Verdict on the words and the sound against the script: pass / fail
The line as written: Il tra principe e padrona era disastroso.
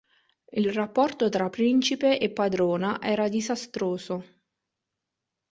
fail